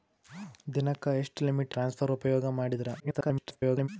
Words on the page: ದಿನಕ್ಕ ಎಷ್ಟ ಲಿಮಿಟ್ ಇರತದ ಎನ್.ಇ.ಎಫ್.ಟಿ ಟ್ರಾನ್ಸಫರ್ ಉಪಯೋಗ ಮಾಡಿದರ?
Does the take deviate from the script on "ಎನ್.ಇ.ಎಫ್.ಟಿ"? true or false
true